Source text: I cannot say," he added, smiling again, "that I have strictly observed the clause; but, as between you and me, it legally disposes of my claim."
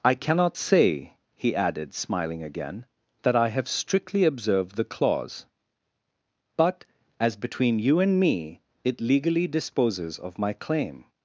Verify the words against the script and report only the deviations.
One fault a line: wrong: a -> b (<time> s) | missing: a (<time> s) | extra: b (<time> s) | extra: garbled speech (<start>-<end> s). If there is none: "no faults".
no faults